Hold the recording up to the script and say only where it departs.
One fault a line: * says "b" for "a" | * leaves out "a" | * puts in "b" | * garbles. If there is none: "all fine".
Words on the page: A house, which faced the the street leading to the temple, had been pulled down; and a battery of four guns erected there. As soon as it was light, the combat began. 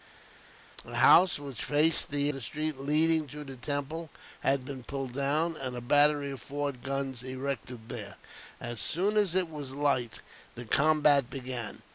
all fine